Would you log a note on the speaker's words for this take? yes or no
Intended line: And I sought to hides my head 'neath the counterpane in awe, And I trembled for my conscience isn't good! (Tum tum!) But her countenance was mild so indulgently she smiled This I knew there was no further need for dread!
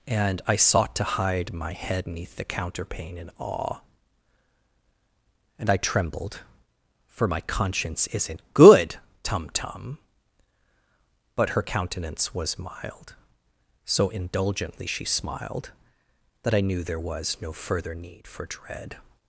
yes